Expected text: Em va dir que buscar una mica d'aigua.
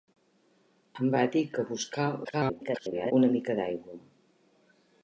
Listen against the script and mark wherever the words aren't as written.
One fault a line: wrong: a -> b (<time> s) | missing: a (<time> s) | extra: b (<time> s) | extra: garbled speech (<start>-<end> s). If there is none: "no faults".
extra: garbled speech (2.2-3.1 s)